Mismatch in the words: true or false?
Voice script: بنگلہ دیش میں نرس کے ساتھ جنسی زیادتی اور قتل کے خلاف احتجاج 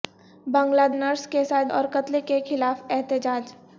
true